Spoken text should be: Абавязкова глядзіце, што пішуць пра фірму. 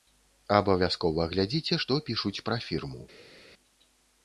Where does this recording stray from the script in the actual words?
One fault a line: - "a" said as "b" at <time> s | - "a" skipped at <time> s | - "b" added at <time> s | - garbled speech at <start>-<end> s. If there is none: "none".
none